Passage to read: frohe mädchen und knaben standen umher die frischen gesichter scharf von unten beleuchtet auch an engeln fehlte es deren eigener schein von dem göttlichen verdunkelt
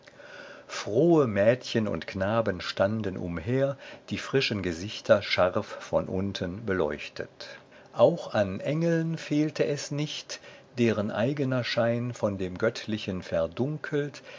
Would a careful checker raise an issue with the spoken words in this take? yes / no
yes